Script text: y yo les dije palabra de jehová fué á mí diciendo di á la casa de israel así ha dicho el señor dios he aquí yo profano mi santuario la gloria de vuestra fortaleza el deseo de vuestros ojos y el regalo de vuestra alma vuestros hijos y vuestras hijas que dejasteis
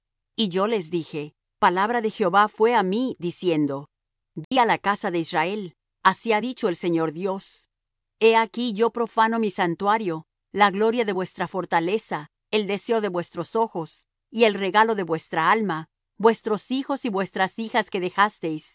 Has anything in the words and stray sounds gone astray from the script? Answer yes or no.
yes